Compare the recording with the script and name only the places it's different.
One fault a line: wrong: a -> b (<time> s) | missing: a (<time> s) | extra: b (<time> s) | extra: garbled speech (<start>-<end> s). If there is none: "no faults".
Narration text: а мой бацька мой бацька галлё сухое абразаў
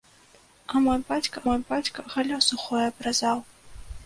no faults